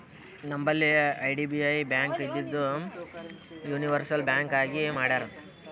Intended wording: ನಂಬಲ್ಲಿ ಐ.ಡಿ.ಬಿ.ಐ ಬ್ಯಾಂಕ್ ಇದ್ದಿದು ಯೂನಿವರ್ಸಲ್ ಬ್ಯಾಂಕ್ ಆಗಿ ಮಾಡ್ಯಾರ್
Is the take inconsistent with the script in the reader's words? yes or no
no